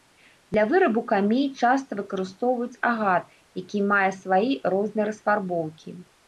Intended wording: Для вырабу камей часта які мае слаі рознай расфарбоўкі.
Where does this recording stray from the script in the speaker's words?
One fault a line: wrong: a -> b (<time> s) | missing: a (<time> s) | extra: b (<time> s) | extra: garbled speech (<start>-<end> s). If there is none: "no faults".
extra: выкарыстоўваюць агат (2.0 s)